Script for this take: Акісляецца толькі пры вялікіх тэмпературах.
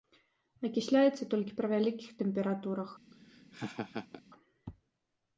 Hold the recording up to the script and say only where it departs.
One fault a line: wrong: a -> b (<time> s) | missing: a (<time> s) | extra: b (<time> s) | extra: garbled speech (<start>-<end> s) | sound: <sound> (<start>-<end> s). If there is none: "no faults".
sound: laugh (3.1-4.2 s)